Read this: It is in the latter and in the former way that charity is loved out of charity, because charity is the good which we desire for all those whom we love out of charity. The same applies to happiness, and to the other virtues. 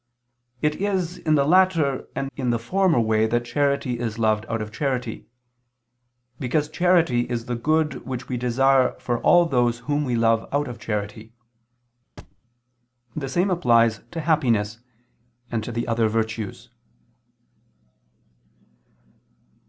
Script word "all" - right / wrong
right